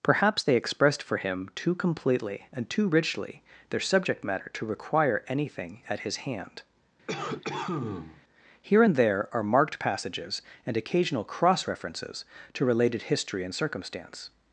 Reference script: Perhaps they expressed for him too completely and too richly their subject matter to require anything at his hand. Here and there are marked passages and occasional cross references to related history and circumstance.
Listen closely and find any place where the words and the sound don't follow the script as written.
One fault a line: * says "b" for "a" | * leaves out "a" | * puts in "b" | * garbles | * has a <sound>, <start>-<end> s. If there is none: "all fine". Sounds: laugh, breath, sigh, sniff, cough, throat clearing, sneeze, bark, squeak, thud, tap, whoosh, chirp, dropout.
* has a cough, 7.1-8.2 s